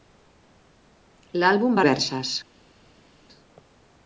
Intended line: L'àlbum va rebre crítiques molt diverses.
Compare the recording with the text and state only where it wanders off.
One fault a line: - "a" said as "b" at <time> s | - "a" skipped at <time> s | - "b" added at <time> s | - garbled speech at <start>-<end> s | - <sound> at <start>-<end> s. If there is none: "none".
- "rebre crítiques molt" skipped at 1.8 s